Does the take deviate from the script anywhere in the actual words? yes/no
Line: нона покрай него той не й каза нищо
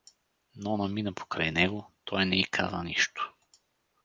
yes